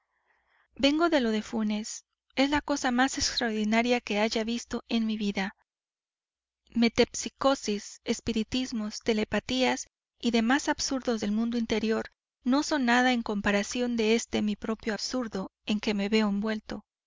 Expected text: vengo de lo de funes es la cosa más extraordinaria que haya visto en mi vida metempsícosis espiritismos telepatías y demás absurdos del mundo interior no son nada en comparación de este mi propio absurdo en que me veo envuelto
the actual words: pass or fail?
pass